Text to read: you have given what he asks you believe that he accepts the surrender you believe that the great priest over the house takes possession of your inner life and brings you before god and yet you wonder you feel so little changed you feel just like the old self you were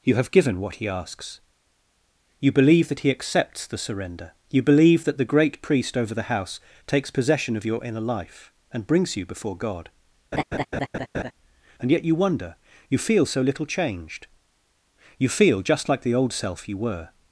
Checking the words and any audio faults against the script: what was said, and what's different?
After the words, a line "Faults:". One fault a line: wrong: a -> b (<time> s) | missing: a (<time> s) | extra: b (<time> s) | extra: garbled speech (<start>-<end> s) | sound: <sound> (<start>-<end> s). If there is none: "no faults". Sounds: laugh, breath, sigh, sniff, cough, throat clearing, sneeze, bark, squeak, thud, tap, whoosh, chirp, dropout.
you have given what he asks you believe that he accepts the surrender you believe that the great priest over the house takes possession of your inner life and brings you before god and yet you wonder you feel so little changed you feel just like the old self you were
Faults:
sound: laugh (10.3-11.3 s)